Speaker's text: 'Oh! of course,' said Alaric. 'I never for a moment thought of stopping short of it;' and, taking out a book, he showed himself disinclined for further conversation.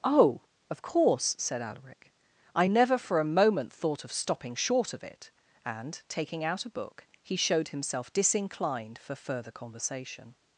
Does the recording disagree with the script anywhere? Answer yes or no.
no